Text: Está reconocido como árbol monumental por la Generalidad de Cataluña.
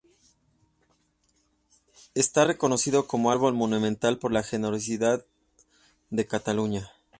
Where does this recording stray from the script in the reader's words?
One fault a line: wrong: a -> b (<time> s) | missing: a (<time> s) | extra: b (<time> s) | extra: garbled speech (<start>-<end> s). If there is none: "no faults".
no faults